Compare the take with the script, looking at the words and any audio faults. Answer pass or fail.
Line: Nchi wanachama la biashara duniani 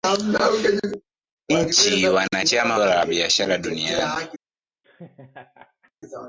fail